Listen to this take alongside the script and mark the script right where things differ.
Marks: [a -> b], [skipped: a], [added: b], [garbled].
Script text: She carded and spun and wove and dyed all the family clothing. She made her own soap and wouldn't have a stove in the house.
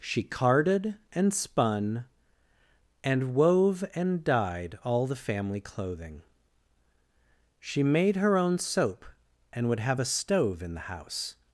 She carded and spun and wove and dyed all the family clothing. She made her own soap and [wouldn't -> would] have a stove in the house.